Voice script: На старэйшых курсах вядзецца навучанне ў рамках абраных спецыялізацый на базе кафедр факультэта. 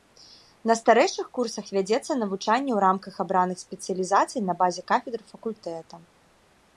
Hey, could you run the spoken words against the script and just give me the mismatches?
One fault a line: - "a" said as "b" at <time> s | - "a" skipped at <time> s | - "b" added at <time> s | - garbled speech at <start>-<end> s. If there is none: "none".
none